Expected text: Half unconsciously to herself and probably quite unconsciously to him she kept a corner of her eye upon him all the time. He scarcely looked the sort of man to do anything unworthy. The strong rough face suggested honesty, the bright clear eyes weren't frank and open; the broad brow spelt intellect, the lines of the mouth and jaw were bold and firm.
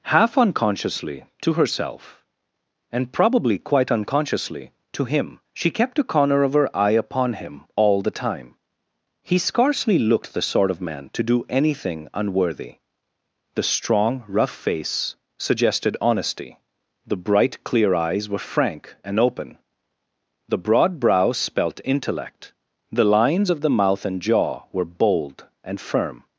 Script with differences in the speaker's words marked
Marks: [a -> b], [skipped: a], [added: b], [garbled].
Half unconsciously to herself and probably quite unconsciously to him she kept a corner of her eye upon him all the time. He scarcely looked the sort of man to do anything unworthy. The strong rough face suggested honesty, the bright clear eyes [weren't -> were] frank and open; the broad brow spelt intellect, the lines of the mouth and jaw were bold and firm.